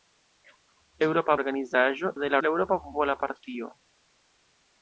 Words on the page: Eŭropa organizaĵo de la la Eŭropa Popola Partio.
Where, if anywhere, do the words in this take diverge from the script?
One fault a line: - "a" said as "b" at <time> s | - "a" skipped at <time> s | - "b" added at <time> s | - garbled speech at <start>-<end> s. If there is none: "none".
none